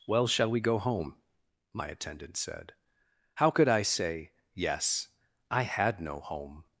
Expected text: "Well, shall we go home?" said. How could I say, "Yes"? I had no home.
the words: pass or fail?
fail